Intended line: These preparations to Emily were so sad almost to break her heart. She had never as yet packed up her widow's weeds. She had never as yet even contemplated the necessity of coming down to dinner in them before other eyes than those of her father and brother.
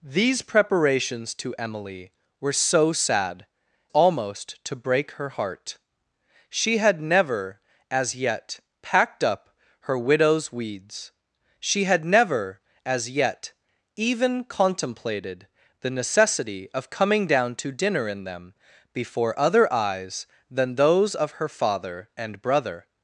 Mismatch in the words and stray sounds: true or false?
false